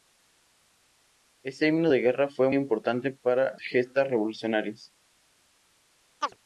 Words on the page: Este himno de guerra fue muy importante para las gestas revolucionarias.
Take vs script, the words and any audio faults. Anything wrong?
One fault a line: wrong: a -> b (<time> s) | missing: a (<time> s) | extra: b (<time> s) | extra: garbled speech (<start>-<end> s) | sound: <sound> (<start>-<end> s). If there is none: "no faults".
missing: muy (2.5 s)
missing: las (3.6 s)
sound: chirp (6.2-6.4 s)